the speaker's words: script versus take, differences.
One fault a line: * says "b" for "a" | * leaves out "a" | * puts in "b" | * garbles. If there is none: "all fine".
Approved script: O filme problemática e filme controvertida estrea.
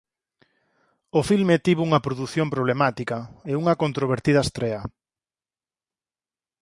* puts in "tivo unha produción"
* says "unha" for "filme"